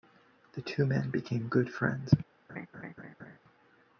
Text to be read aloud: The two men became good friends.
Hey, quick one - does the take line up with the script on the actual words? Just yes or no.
yes